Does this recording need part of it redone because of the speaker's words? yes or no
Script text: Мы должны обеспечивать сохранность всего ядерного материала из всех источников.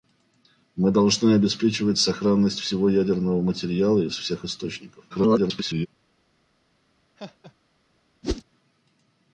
yes